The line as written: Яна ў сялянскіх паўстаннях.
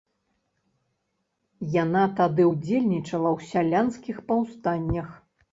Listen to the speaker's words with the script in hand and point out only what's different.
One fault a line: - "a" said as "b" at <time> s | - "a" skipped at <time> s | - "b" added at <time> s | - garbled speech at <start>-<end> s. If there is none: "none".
- "тады ўдзельнічала" added at 2.2 s